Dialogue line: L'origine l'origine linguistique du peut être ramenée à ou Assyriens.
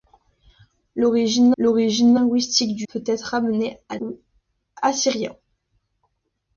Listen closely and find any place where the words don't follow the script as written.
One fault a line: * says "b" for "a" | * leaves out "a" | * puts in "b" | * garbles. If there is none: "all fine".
all fine